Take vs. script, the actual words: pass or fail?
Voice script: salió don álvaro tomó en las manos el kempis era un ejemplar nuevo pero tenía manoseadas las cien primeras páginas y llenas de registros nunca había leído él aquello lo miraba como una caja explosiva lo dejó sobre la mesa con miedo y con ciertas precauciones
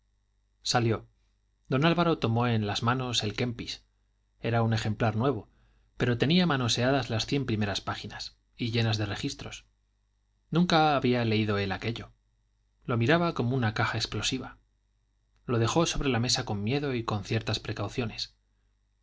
pass